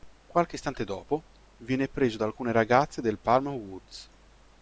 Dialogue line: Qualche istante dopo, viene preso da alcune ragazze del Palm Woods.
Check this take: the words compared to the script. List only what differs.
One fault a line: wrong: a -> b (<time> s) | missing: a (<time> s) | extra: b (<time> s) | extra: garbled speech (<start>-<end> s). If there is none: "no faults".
no faults